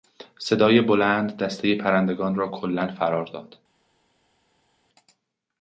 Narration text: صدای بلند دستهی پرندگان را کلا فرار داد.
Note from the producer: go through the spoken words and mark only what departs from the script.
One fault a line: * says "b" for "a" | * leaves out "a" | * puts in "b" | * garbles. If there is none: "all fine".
all fine